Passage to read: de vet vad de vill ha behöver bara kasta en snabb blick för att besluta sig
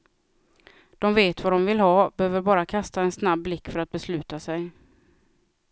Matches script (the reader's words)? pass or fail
pass